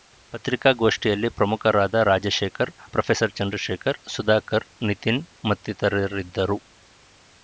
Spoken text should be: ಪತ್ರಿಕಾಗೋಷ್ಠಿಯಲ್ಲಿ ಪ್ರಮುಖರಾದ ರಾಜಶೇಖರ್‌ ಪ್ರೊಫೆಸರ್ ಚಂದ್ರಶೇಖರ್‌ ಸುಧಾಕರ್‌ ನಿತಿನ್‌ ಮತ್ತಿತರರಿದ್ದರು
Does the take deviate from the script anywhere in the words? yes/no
no